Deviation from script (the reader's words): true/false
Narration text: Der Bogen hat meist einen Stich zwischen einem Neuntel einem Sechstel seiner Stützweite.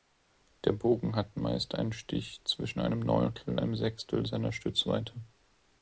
false